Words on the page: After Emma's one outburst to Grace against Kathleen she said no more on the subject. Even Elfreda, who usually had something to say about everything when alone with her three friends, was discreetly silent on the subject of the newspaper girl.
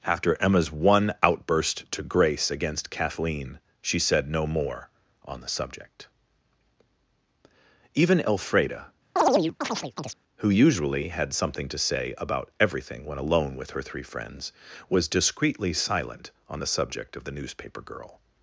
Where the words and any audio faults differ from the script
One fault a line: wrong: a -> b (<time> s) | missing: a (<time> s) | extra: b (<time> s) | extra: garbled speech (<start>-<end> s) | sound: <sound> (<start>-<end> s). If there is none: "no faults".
sound: chirp (9.2-10.2 s)